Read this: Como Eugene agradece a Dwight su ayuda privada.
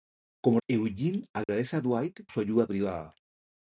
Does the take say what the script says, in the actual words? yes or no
yes